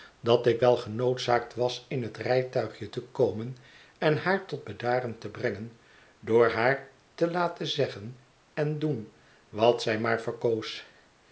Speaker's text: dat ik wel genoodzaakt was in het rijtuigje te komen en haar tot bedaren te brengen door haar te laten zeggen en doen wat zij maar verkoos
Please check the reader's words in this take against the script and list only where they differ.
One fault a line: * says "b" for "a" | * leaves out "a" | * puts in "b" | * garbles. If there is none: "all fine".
all fine